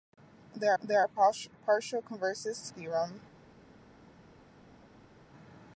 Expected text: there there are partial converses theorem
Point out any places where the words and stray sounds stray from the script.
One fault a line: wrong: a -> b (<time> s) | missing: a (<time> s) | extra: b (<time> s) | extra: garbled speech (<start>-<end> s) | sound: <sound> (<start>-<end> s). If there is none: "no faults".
no faults